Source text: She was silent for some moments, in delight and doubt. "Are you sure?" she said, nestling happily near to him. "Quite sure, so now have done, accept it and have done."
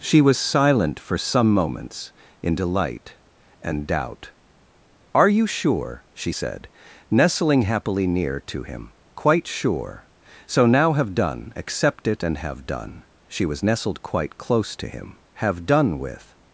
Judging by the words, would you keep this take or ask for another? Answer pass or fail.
fail